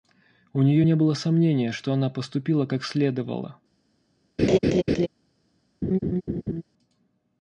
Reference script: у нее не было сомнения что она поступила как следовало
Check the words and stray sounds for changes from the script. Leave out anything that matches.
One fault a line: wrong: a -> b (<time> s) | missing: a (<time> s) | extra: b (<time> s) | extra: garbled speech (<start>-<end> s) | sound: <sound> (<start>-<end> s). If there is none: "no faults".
sound: laugh (4.4-5.1 s)
sound: laugh (5.8-6.6 s)